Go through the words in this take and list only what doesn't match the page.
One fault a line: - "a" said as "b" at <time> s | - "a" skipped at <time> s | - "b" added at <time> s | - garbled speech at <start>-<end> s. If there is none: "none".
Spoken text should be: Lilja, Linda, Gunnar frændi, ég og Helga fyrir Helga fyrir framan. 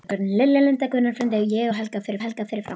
none